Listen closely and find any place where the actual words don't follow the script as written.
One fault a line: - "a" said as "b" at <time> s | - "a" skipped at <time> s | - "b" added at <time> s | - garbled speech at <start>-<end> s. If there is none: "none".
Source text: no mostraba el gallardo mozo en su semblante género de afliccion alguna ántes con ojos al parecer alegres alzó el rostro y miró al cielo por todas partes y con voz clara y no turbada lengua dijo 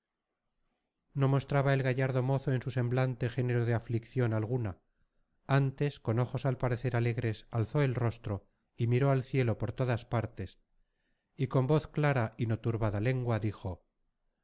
none